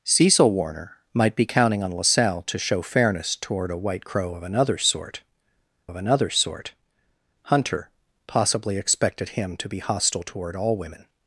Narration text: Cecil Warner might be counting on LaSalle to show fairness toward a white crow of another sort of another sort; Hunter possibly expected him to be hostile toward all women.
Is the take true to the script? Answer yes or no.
yes